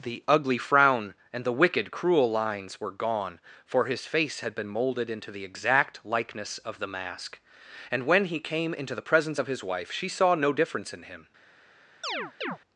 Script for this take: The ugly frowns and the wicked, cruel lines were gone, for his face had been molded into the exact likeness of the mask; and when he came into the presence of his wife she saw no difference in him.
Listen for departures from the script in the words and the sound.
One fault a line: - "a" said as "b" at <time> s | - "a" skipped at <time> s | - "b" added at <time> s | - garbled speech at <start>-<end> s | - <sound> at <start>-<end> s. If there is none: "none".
- "frowns" said as "frown" at 0.6 s
- chirp at 12.0-12.6 s